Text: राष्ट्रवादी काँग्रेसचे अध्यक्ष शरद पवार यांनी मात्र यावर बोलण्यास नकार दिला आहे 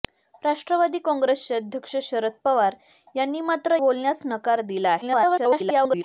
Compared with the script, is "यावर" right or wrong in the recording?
wrong